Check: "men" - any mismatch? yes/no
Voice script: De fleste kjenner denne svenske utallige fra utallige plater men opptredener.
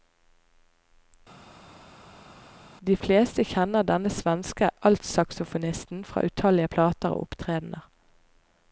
yes